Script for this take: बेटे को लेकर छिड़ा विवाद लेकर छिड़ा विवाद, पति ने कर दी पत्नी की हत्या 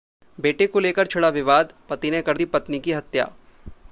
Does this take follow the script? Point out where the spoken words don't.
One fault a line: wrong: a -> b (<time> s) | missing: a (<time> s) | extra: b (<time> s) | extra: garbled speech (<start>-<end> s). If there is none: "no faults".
missing: लेकर छिड़ा विवाद (1.7 s)